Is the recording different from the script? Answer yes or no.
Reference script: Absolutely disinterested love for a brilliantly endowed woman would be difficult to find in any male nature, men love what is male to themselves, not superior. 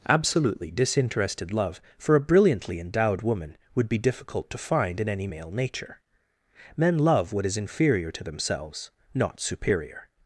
yes